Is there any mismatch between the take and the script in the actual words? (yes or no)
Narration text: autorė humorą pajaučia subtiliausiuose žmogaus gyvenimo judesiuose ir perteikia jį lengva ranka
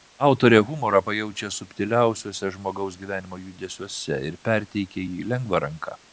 no